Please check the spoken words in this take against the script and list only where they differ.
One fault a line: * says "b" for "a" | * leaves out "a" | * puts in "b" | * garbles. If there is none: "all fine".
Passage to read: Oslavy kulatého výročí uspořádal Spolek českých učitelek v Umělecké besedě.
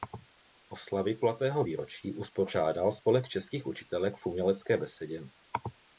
all fine